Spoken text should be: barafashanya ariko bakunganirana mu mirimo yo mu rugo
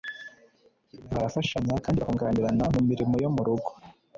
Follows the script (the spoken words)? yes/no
no